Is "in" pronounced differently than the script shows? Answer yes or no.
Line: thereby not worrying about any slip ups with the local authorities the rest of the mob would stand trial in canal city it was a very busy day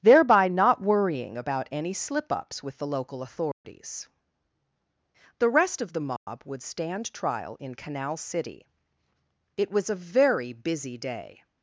no